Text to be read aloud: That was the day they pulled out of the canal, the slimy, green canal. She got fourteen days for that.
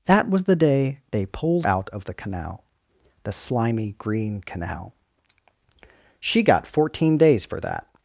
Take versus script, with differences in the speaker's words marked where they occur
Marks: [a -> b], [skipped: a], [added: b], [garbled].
That was the day they pulled out of the canal, the slimy, green canal. She got fourteen days for that.